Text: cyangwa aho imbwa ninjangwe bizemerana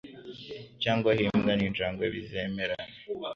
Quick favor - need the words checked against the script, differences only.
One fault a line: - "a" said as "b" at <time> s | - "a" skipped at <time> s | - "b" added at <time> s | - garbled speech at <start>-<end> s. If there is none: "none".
none